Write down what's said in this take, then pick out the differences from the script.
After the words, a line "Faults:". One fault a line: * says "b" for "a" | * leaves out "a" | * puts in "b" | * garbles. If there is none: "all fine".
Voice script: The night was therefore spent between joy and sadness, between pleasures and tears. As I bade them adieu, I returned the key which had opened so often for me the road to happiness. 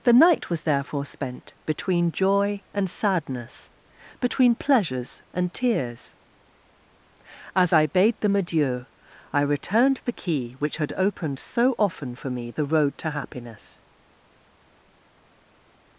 The night was therefore spent between joy and sadness, between pleasures and tears. As I bade them adieu, I returned the key which had opened so often for me the road to happiness.
Faults:
all fine